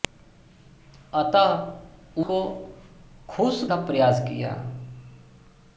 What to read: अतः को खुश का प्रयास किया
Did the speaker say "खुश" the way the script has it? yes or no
yes